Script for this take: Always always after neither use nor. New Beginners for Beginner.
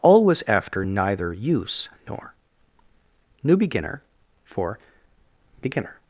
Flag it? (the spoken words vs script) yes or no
yes